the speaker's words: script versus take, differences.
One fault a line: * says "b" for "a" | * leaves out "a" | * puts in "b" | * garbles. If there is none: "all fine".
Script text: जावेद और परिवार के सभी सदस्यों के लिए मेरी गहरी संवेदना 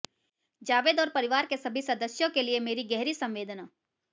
all fine